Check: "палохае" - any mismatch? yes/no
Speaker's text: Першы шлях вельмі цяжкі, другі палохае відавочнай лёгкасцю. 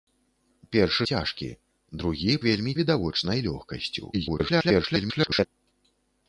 yes